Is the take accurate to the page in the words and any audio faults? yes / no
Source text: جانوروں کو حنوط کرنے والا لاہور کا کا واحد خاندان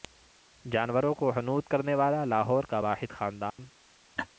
no